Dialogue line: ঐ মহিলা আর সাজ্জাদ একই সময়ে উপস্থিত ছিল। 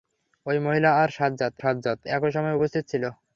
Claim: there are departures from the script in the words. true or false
true